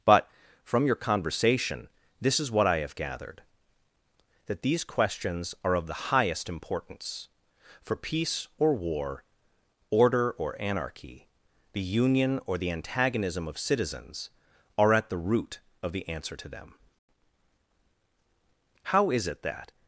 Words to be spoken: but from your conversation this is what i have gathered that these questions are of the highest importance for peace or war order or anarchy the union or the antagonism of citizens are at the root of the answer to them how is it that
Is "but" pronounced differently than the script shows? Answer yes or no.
no